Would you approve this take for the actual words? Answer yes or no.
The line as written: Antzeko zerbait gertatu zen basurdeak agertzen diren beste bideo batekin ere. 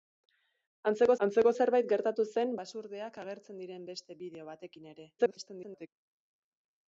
no